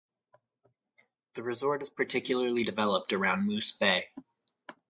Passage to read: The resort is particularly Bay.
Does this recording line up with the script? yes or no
no